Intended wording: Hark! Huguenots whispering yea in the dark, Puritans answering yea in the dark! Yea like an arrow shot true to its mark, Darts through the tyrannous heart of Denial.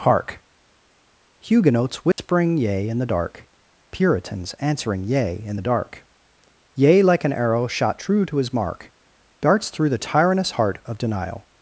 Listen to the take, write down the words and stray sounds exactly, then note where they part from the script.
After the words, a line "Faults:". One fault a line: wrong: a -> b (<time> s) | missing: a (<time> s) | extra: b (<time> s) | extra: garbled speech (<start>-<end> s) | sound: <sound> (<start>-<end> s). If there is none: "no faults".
Hark! Huguenots whispering yea in the dark, Puritans answering yea in the dark! Yea like an arrow shot true to his mark, Darts through the tyrannous heart of Denial.
Faults:
sound: dropout (2.1-2.2 s)
wrong: its -> his (8.4 s)